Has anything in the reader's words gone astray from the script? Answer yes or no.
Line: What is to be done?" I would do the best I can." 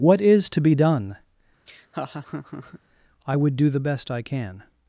no